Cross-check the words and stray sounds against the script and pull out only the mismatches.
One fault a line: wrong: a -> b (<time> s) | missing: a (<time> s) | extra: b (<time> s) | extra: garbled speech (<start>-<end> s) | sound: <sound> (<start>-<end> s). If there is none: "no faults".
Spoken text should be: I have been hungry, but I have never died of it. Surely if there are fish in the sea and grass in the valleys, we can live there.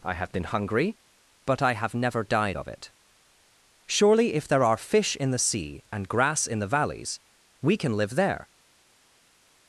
no faults